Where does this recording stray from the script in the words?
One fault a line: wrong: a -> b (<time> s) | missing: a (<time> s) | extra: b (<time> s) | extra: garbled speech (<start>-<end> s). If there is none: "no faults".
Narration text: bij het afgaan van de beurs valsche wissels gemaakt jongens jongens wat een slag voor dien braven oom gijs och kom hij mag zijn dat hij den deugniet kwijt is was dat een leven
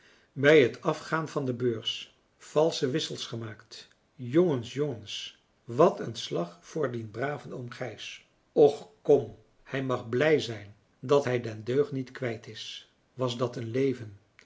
extra: blij (10.1 s)